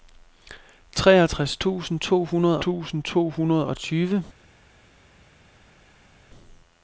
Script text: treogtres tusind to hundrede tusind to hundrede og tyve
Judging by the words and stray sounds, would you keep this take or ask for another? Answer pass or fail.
pass